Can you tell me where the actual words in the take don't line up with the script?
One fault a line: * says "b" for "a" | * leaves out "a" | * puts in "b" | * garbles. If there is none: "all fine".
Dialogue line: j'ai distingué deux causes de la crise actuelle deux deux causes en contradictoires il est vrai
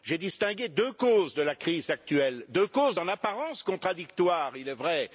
* leaves out "deux"
* puts in "apparence"